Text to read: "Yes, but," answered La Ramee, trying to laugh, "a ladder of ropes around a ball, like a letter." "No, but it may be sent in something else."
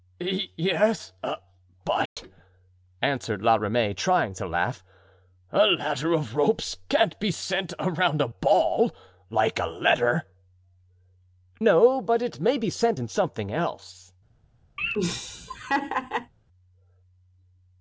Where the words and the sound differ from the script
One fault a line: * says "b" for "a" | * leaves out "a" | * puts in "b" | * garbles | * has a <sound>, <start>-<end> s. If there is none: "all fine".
* has a dropout, 2.1-2.2 s
* puts in "can't be sent"
* has a laugh, 14.8-16.3 s